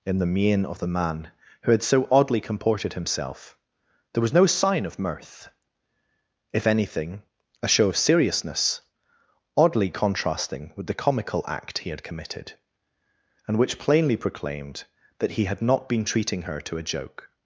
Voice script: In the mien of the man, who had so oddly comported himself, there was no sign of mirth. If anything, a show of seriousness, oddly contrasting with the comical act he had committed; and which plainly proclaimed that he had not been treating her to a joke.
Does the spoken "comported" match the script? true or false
true